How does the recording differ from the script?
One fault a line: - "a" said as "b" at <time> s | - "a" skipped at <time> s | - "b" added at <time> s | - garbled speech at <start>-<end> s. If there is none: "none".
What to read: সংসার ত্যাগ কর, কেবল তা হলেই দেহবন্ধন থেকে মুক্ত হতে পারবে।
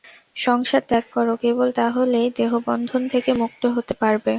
none